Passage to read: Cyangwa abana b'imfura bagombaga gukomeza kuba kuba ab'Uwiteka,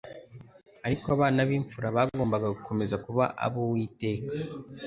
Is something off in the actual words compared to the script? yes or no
yes